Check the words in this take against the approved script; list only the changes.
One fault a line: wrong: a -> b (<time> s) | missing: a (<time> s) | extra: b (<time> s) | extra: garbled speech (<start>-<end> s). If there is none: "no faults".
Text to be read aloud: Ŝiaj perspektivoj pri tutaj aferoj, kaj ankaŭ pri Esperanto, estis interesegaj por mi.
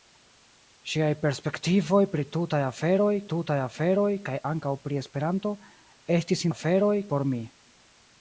extra: tutaj aferoj (3.3 s)
wrong: interesegaj -> aferoj (6.5 s)